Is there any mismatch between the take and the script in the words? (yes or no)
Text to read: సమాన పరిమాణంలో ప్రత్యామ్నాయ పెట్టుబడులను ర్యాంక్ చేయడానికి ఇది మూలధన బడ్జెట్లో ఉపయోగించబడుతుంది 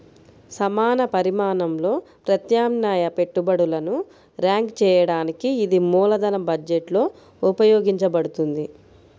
no